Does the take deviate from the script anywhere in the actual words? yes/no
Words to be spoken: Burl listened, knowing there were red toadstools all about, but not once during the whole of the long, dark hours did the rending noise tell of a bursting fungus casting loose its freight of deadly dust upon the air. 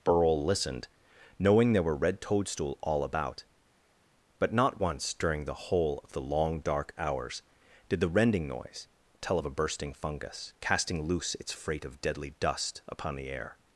yes